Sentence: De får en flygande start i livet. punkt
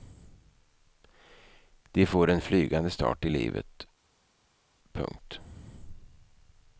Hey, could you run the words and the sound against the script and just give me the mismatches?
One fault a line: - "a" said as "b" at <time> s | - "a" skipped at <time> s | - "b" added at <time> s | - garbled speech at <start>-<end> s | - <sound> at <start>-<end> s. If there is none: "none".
none